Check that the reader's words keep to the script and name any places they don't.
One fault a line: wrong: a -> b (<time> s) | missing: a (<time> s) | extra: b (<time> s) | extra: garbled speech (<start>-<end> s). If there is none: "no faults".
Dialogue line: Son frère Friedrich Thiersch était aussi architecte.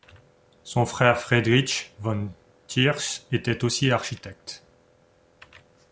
extra: von (2.0 s)